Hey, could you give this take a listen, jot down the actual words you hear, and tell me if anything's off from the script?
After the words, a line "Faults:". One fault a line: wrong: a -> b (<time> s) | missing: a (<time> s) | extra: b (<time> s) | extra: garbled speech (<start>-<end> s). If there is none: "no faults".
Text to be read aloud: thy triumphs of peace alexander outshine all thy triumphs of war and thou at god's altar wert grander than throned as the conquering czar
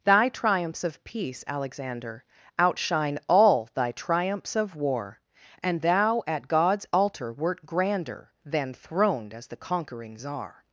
thy triumphs of peace alexander outshine all thy triumphs of war and thou at god's altar wert grander than throned as the conquering czar
Faults:
no faults